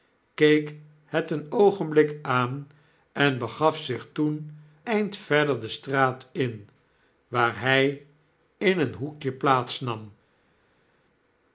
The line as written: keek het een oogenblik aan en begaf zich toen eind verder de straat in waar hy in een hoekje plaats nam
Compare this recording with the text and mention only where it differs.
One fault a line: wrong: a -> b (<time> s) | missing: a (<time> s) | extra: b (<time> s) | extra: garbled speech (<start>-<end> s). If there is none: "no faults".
no faults